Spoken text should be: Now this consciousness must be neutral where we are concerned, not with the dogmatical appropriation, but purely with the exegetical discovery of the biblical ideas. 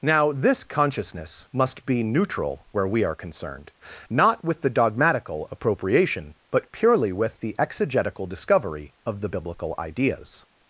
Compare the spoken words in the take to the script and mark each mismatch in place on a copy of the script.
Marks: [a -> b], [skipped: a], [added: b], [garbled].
Now this consciousness must be neutral where we are concerned, not with the dogmatical appropriation, but purely with the exegetical discovery of the biblical ideas.